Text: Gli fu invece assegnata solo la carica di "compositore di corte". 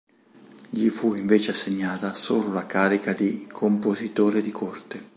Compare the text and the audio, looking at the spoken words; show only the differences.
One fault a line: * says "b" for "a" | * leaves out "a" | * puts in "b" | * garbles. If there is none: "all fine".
all fine